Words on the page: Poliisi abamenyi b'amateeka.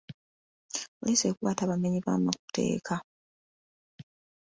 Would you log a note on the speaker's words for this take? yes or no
yes